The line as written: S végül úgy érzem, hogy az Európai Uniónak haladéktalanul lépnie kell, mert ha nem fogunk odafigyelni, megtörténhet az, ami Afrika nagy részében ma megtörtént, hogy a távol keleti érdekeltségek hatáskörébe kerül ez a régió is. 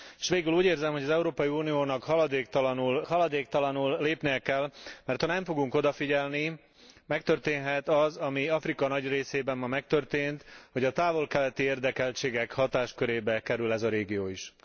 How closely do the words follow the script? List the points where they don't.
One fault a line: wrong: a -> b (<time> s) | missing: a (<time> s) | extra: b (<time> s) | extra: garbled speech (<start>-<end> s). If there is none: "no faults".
extra: haladéktalanul (3.1 s)